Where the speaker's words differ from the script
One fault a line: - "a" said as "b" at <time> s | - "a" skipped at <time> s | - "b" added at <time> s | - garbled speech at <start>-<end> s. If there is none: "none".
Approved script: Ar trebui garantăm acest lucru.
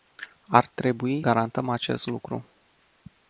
none